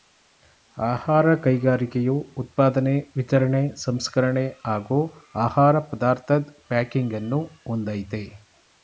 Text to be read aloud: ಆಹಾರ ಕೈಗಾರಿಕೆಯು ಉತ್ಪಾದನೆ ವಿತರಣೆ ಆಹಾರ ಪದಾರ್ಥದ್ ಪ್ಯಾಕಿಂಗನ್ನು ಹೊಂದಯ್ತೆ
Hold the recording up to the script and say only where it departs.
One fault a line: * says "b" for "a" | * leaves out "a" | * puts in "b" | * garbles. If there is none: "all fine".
* puts in "ಸಂಸ್ಕರಣೆ ಹಾಗೂ"